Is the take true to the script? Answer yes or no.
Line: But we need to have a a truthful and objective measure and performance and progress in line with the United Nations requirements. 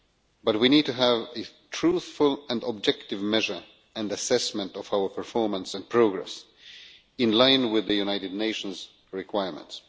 no